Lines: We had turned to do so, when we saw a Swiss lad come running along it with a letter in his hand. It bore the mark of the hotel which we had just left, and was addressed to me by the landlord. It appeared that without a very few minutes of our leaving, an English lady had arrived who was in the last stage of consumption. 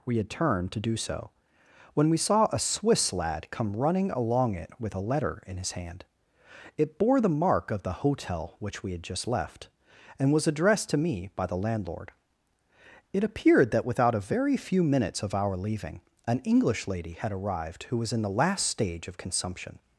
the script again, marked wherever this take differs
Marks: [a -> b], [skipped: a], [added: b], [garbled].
We had turned to do so, when we saw a Swiss lad come running along it with a letter in his hand. It bore the mark of the hotel which we had just left, and was addressed to me by the landlord. It appeared that without a very few minutes of our leaving, an English lady had arrived who was in the last stage of consumption.